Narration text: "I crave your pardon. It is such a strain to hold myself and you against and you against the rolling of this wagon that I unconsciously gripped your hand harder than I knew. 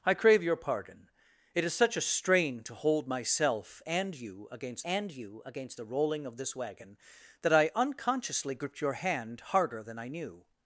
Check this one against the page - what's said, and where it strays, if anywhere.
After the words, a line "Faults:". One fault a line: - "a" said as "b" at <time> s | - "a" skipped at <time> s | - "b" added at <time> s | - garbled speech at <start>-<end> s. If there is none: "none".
"I crave your pardon. It is such a strain to hold myself and you against and you against the rolling of this wagon that I unconsciously gripped your hand harder than I knew.
Faults:
none